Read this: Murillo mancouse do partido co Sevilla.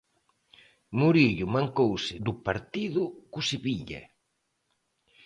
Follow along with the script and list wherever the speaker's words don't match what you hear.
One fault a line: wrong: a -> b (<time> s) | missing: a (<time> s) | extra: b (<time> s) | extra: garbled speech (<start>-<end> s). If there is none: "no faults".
no faults